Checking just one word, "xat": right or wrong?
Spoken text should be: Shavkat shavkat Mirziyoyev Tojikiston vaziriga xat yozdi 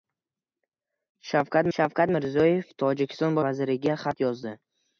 right